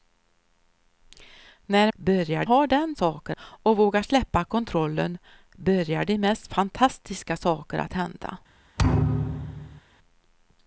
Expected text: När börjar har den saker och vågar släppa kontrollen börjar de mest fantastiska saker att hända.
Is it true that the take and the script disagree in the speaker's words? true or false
false